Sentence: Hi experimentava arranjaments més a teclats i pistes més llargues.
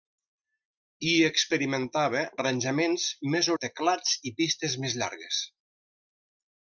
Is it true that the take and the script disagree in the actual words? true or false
false